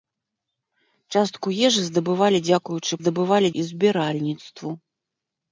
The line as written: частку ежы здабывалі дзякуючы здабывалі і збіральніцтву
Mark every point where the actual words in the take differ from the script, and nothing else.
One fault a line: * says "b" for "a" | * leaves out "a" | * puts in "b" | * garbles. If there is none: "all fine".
all fine